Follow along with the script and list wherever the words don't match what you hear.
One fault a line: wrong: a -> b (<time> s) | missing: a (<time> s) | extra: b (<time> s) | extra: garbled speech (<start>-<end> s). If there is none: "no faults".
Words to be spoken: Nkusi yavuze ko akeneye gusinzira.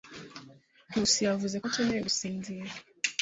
no faults